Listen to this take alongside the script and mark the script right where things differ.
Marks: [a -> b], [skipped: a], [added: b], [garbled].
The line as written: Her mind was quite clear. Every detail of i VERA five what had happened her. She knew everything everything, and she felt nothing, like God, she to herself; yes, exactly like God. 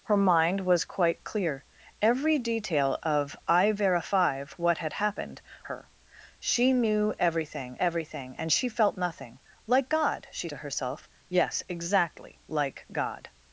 Her mind was quite clear. Every detail of i VERA five what had happened her. She knew everything everything, and she felt nothing, like God, she to herself; yes, exactly like God.